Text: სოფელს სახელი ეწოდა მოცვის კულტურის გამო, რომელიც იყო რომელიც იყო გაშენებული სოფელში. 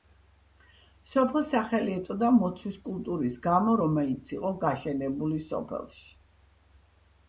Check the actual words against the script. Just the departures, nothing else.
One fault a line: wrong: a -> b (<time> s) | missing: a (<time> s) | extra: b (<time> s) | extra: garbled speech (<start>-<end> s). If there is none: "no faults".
missing: რომელიც იყო (4.6 s)